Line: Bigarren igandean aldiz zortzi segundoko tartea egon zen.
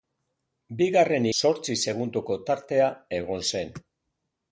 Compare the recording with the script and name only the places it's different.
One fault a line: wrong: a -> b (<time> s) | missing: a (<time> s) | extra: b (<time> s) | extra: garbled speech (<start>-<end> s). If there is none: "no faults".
missing: igandean aldiz (1.3 s)